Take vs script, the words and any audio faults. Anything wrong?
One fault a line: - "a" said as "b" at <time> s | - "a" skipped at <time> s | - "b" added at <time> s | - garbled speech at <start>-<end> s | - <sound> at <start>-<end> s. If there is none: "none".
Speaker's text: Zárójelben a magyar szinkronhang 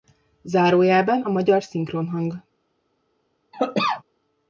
- cough at 3.5-4.0 s